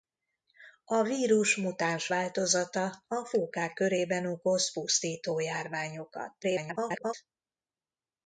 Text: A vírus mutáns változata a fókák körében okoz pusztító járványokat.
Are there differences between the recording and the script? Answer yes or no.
yes